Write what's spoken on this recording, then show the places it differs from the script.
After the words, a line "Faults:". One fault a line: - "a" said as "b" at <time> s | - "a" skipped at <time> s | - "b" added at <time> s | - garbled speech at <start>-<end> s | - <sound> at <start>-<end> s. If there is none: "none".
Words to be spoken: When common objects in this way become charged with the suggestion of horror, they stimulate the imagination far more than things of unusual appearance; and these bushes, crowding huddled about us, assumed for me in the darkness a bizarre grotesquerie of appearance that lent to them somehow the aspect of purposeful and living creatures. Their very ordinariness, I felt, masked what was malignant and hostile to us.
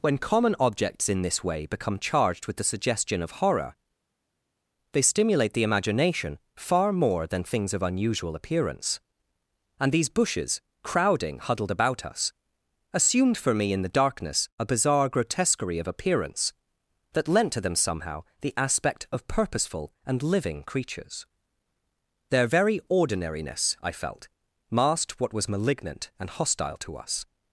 When common objects in this way become charged with the suggestion of horror, they stimulate the imagination far more than things of unusual appearance; and these bushes, crowding huddled about us, assumed for me in the darkness a bizarre grotesquerie of appearance that lent to them somehow the aspect of purposeful and living creatures. Their very ordinariness, I felt, masked what was malignant and hostile to us.
Faults:
none